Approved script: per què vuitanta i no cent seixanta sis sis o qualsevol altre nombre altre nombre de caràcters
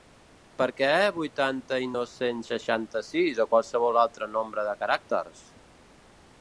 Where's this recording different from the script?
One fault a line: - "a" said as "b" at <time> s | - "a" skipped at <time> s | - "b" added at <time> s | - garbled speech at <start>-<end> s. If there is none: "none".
- "sis" skipped at 3.4 s
- "altre nombre" skipped at 4.7 s